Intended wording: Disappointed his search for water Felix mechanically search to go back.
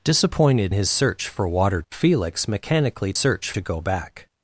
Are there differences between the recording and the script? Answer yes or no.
no